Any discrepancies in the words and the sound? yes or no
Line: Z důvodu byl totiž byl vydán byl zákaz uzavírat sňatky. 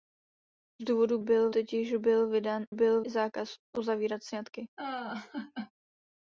yes